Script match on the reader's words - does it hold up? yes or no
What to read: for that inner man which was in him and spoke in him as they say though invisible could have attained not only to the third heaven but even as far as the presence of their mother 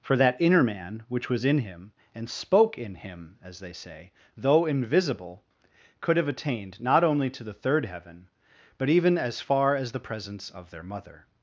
yes